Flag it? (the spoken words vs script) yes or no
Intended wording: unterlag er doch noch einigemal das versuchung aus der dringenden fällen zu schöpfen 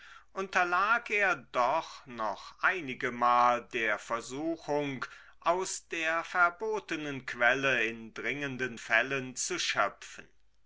yes